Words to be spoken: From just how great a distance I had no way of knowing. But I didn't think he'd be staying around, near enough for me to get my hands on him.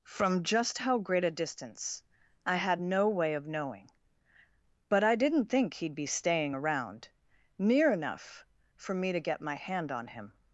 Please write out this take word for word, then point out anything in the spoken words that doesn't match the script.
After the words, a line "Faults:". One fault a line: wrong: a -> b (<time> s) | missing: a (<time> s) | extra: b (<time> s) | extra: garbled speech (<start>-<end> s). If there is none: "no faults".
From just how great a distance I had no way of knowing. But I didn't think he'd be staying around, near enough for me to get my hand on him.
Faults:
wrong: hands -> hand (9.5 s)